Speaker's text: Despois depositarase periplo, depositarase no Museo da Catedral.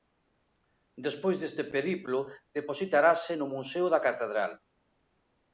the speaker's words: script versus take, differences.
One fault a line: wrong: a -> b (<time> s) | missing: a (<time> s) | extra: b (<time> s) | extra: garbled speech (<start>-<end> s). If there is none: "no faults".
wrong: depositarase -> deste (1.4 s)